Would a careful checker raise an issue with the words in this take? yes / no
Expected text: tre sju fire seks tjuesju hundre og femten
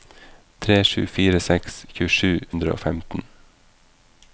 no